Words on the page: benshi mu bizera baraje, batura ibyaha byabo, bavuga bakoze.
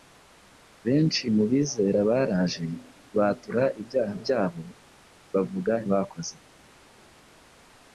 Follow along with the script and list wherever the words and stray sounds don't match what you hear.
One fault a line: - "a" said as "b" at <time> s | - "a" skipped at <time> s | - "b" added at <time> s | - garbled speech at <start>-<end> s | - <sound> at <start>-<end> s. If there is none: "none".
none